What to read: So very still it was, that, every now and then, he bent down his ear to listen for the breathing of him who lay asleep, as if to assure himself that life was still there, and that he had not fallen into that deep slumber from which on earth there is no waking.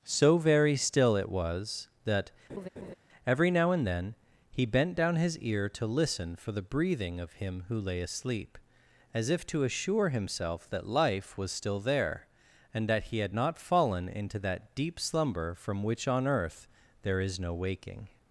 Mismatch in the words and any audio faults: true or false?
true